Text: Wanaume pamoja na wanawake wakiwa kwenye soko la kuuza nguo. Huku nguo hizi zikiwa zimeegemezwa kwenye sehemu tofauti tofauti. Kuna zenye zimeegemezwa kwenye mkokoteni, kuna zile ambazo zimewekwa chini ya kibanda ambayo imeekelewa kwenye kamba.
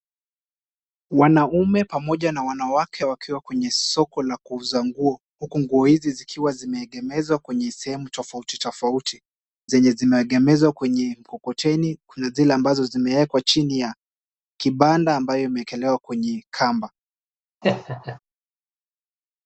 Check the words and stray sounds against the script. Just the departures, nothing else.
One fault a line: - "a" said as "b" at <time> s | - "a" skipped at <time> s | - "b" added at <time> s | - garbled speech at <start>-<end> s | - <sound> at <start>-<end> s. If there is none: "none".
- "Kuna" skipped at 9.2 s
- laugh at 17.6-18.2 s